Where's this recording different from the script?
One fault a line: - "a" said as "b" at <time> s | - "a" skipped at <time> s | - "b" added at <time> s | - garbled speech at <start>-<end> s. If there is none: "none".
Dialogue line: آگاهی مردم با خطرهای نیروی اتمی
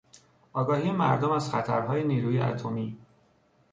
- "با" said as "از" at 1.3 s